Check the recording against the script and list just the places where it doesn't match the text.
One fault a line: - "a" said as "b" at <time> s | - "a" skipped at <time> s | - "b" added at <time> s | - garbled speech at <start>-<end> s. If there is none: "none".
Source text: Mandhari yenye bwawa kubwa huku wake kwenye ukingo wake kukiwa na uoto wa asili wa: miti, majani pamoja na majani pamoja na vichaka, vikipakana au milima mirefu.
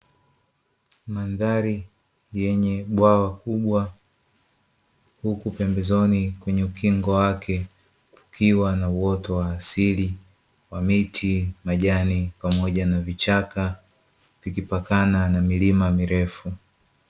- "wake" said as "pembezoni" at 5.5 s
- "majani pamoja na" skipped at 13.0 s
- "au" said as "na" at 15.3 s